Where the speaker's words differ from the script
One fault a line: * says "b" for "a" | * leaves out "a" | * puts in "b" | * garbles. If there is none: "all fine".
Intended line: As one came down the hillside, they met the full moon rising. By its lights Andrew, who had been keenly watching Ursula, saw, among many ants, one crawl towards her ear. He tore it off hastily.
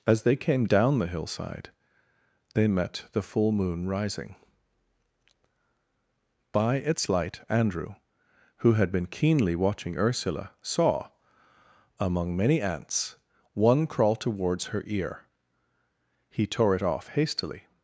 * says "they" for "one"
* says "light" for "lights"